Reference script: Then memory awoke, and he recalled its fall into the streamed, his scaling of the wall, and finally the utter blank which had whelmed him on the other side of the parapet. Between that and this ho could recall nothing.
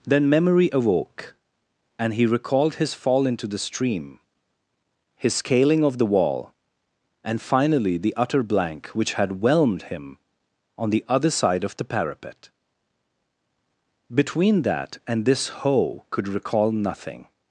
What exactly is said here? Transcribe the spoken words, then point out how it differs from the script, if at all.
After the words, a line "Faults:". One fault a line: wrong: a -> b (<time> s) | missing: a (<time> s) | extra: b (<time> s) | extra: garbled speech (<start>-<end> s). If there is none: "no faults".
Then memory awoke, and he recalled his fall into the stream, his scaling of the wall, and finally the utter blank which had whelmed him on the other side of the parapet. Between that and this ho could recall nothing.
Faults:
wrong: its -> his (2.8 s)
wrong: streamed -> stream (3.6 s)